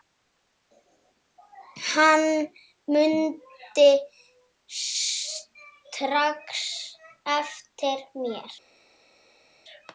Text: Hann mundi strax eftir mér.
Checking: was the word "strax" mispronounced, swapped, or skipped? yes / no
no